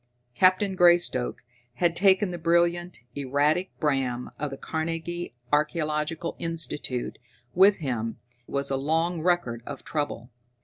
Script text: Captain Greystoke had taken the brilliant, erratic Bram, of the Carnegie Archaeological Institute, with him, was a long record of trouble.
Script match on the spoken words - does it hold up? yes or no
yes